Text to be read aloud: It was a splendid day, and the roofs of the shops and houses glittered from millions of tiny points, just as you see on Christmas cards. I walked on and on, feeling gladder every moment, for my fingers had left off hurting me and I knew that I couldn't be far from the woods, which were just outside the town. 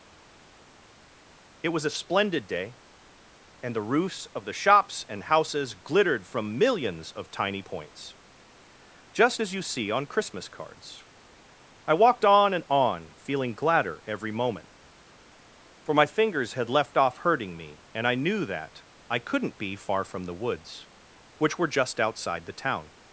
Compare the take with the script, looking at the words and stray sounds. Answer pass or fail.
pass